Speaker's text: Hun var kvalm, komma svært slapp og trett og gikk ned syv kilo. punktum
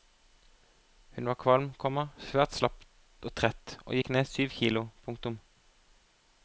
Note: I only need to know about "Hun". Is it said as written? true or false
true